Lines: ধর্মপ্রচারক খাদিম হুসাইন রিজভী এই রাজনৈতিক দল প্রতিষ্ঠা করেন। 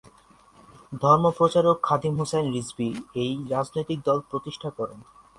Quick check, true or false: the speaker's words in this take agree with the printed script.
true